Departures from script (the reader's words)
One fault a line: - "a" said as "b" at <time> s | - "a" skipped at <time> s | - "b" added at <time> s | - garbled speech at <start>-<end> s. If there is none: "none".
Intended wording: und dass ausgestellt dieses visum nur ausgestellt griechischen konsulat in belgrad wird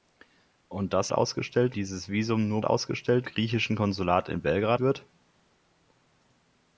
none